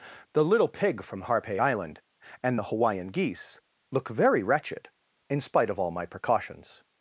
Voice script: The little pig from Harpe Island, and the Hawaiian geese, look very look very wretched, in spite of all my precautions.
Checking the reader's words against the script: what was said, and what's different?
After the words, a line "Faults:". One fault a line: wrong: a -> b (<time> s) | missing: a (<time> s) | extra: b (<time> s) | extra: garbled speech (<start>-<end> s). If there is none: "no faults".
The little pig from Harpe Island, and the Hawaiian geese, look very wretched, in spite of all my precautions.
Faults:
missing: look very (4.4 s)